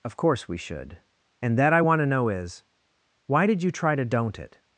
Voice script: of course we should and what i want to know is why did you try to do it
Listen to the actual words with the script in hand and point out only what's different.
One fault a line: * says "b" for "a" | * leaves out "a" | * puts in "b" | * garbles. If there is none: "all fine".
* says "that" for "what"
* says "don't" for "do"